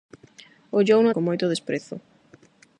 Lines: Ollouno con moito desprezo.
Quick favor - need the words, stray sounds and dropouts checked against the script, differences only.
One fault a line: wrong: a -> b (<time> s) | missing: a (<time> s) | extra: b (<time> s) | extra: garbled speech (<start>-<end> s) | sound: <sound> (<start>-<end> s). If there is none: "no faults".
no faults